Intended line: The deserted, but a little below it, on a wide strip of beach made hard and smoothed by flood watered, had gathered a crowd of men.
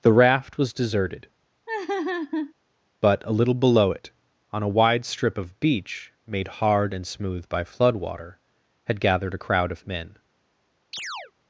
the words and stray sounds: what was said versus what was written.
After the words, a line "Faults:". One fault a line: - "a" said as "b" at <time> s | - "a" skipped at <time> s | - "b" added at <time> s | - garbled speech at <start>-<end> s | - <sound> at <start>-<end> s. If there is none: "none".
The raft was deserted, but a little below it, on a wide strip of beach made hard and smooth by flood water, had gathered a crowd of men.
Faults:
- "raft was" added at 0.1 s
- laugh at 1.7-2.5 s
- "smoothed" said as "smooth" at 7.1 s
- "watered" said as "water" at 7.9 s
- chirp at 10.9-11.3 s